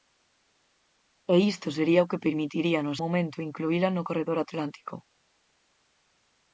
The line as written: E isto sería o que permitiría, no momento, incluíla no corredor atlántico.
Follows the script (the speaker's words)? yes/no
yes